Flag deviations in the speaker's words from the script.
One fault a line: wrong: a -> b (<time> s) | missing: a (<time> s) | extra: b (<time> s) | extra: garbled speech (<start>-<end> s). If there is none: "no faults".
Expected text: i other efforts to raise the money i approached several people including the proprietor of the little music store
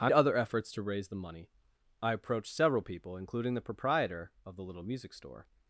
no faults